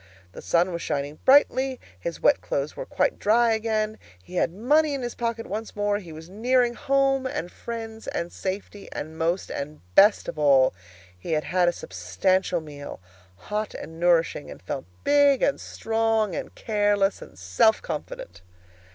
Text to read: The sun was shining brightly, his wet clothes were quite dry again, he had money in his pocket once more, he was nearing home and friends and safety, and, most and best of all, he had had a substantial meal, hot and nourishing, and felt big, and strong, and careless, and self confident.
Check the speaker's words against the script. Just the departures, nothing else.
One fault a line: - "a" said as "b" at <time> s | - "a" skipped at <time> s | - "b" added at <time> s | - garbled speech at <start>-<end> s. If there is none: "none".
none